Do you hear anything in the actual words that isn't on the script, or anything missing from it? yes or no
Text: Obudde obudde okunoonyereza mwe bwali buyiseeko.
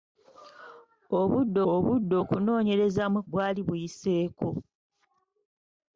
no